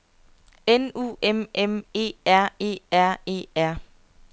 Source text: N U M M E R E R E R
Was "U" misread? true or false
false